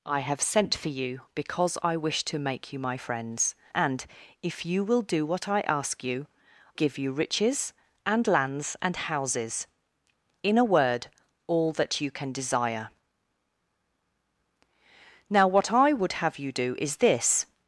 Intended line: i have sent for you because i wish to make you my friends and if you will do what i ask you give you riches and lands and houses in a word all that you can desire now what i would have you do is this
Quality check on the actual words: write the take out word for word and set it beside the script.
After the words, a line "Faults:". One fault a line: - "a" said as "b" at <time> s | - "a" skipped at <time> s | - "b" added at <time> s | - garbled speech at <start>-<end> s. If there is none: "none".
i have sent for you because i wish to make you my friends and if you will do what i ask you give you riches and lands and houses in a word all that you can desire now what i would have you do is this
Faults:
none